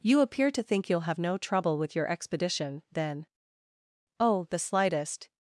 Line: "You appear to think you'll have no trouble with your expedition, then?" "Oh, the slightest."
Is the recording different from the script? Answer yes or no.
no